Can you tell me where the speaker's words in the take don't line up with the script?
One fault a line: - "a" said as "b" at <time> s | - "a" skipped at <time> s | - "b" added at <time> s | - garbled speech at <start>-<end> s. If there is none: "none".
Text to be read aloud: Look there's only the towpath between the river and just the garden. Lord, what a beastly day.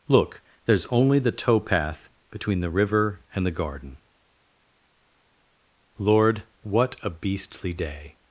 - "just" skipped at 3.5 s